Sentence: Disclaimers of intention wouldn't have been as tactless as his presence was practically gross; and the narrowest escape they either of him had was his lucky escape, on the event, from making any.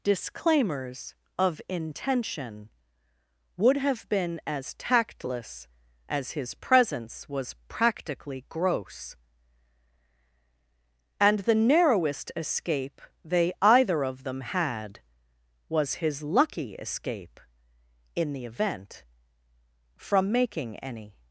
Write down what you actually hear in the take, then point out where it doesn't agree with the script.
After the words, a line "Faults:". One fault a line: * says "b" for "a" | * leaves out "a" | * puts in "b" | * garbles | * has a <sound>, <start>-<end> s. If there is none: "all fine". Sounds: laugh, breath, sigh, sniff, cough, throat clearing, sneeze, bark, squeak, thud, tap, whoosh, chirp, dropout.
Disclaimers of intention would have been as tactless as his presence was practically gross; and the narrowest escape they either of them had was his lucky escape, in the event, from making any.
Faults:
* says "would" for "wouldn't"
* says "them" for "him"
* says "in" for "on"